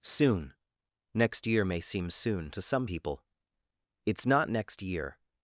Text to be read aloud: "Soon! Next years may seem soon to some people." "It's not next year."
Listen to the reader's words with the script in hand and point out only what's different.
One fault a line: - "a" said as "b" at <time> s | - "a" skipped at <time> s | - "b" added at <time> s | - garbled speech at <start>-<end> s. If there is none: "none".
- "years" said as "year" at 1.4 s